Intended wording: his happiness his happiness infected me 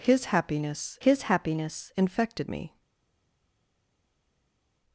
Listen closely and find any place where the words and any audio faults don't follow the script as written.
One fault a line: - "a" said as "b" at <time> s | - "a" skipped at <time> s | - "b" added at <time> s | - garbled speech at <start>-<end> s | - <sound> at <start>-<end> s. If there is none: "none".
none